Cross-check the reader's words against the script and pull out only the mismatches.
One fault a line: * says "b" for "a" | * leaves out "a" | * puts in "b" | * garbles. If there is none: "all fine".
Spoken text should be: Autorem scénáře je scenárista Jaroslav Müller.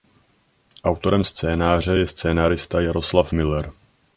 all fine